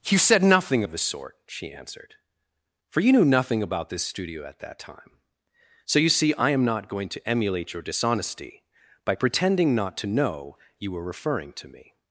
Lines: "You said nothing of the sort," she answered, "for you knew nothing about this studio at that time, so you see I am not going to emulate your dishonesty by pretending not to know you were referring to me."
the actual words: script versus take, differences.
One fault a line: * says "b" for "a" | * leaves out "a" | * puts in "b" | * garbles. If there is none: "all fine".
all fine